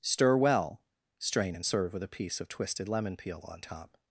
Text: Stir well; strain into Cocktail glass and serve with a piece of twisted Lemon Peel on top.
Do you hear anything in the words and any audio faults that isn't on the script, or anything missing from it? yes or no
yes